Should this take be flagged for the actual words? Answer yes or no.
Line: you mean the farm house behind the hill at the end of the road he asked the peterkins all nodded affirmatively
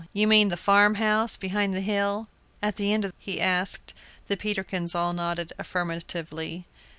yes